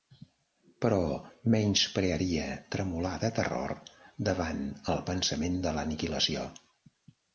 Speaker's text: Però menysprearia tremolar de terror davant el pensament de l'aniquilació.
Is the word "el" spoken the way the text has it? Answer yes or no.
yes